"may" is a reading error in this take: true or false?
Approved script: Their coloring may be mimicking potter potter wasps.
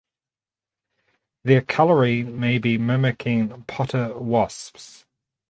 false